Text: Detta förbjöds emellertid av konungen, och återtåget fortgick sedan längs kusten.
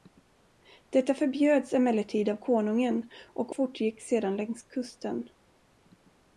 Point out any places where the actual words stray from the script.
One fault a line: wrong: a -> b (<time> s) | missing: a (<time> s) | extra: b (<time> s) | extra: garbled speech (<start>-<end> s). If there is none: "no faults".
missing: återtåget (3.5 s)